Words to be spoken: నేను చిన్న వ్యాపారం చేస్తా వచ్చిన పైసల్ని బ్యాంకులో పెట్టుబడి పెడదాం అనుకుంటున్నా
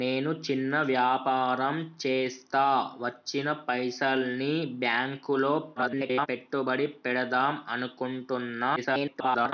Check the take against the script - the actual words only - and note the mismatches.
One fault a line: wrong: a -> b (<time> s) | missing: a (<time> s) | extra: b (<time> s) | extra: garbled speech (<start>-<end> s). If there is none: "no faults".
extra: garbled speech (5.8-6.3 s)
extra: garbled speech (8.8-9.5 s)